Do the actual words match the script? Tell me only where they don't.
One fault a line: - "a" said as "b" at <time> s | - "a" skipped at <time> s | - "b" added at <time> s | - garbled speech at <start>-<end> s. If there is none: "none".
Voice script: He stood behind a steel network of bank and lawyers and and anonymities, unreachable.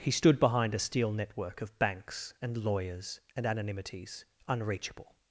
- "bank" said as "banks" at 1.8 s
- "and" skipped at 3.5 s